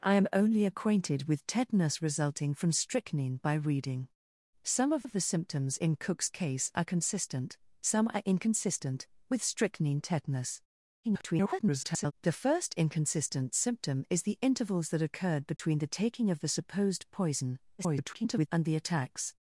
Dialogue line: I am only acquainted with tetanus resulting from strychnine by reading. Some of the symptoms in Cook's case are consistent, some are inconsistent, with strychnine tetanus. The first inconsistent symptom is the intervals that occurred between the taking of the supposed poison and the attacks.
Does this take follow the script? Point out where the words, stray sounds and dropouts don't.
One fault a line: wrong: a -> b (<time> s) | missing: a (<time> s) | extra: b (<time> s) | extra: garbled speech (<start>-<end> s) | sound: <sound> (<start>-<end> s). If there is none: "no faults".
extra: of (5.0 s)
extra: garbled speech (11.0-12.1 s)
sound: dropout (15.6-15.6 s)
extra: garbled speech (17.8-18.5 s)